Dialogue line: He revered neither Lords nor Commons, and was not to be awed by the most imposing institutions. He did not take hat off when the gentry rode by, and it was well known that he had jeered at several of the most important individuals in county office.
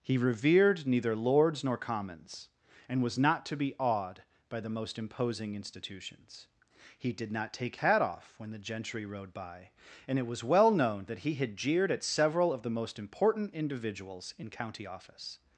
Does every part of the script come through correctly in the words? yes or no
yes